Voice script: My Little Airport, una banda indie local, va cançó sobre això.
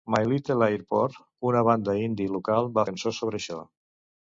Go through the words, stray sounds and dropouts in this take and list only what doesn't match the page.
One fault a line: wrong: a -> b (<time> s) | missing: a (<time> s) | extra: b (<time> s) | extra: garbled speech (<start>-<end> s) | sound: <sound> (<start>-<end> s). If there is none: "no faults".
no faults